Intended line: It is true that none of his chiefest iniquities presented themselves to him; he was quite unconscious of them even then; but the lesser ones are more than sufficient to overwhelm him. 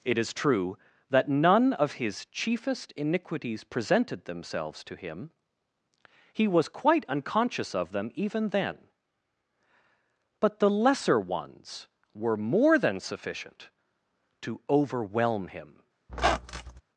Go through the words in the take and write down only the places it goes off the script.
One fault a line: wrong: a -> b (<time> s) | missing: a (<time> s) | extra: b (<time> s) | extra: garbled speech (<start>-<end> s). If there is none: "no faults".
wrong: are -> were (12.1 s)